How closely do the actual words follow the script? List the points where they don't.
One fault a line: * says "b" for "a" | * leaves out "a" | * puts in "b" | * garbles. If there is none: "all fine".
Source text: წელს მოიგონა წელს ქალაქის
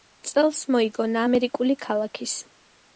* says "ამერიკული" for "წელს"